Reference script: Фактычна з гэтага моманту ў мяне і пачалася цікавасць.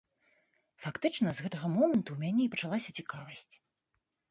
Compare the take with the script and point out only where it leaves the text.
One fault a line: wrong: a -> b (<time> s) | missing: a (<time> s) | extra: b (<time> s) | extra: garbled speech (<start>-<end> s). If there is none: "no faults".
no faults